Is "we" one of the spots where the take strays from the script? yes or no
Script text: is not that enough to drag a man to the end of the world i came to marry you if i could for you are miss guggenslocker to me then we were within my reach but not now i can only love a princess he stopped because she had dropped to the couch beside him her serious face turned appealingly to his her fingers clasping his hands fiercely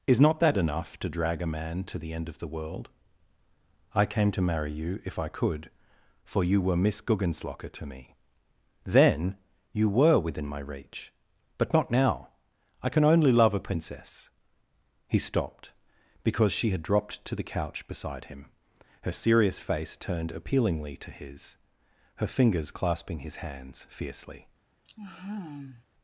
yes